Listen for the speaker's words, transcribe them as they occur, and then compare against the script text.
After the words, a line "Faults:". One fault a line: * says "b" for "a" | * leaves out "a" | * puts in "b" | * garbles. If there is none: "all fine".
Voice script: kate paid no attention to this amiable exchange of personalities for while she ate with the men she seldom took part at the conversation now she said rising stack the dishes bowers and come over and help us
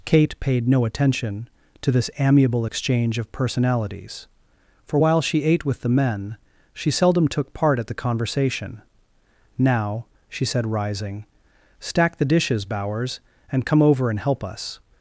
kate paid no attention to this amiable exchange of personalities for while she ate with the men she seldom took part at the conversation now she said rising stack the dishes bowers and come over and help us
Faults:
all fine